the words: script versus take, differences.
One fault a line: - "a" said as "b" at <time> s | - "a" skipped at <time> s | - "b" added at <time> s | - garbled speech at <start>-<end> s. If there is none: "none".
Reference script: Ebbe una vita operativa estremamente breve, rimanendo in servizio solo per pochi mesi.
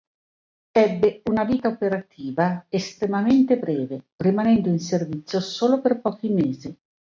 none